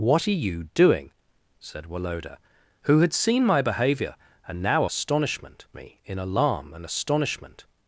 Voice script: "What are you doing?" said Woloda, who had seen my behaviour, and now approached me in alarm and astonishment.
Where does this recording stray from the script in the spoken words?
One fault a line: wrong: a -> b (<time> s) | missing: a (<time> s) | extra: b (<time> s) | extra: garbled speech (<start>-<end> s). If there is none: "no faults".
wrong: approached -> astonishment (4.8 s)